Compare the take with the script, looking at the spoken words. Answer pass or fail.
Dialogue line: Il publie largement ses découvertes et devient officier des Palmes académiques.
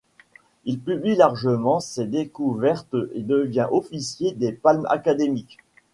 pass